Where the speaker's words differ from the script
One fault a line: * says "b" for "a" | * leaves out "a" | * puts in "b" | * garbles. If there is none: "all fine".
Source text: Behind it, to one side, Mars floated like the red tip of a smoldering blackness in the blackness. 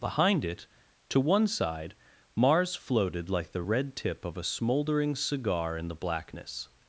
* says "cigar" for "blackness"